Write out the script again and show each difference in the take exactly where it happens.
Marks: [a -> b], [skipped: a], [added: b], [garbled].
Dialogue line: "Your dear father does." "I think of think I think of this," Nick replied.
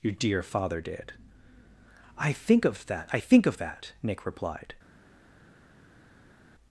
"Your dear father [does." -> did] "I think of [think -> that] I think of [this," -> that] Nick replied.